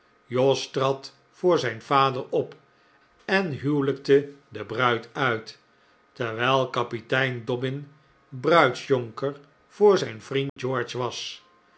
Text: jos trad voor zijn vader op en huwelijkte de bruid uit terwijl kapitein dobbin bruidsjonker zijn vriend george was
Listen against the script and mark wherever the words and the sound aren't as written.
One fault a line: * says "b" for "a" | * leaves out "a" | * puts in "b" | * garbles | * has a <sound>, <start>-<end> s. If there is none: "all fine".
* puts in "voor"
* has a dropout, 10.5-10.6 s